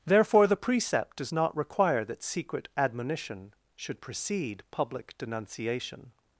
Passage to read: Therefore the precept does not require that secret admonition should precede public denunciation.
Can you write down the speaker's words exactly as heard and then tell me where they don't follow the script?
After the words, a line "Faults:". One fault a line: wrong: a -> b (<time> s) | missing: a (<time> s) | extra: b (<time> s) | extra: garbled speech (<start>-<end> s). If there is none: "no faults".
Therefore the precept does not require that secret admonition should precede public denunciation.
Faults:
no faults